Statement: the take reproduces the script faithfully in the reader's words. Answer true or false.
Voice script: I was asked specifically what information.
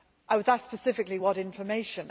true